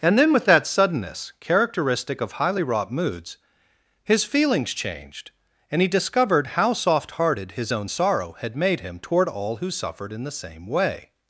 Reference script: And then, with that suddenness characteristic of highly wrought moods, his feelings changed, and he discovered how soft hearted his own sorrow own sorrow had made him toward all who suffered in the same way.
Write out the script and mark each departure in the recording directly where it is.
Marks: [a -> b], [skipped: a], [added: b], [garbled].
And then, with that suddenness characteristic of highly wrought moods, his feelings changed, and he discovered how soft hearted his own sorrow [skipped: own sorrow] had made him toward all who suffered in the same way.